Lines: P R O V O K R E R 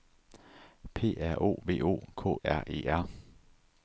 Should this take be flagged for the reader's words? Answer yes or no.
no